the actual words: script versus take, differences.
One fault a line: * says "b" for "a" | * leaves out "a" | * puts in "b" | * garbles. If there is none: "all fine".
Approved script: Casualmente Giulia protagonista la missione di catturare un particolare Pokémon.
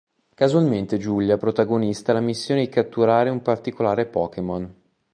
all fine